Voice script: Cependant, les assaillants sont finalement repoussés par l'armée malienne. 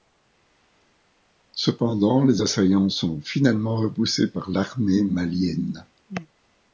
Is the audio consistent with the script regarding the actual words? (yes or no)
yes